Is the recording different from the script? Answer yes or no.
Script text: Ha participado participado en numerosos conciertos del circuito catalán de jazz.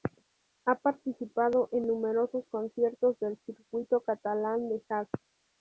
yes